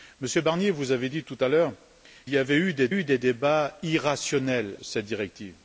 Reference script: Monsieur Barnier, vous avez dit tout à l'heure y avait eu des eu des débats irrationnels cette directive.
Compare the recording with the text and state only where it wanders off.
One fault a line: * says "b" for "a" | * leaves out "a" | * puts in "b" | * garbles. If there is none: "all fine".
all fine